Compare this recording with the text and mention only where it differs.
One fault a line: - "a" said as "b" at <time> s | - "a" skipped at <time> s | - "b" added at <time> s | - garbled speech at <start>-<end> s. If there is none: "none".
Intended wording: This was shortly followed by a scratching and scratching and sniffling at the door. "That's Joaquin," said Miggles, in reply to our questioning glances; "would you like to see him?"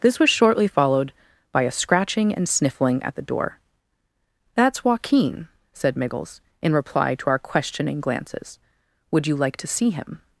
- "scratching and" skipped at 2.5 s